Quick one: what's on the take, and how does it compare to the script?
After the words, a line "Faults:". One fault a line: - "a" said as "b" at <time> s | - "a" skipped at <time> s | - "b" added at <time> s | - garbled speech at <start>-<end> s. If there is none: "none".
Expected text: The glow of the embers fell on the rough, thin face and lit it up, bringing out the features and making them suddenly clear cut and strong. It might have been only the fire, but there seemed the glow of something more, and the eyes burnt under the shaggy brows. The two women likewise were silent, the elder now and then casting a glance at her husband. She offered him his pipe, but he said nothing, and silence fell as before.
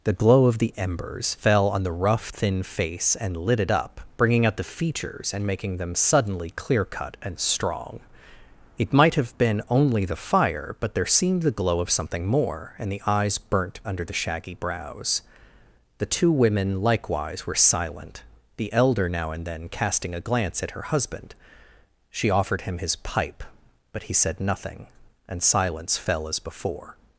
The glow of the embers fell on the rough, thin face and lit it up, bringing out the features and making them suddenly clear cut and strong. It might have been only the fire, but there seemed the glow of something more, and the eyes burnt under the shaggy brows. The two women likewise were silent, the elder now and then casting a glance at her husband. She offered him his pipe, but he said nothing, and silence fell as before.
Faults:
none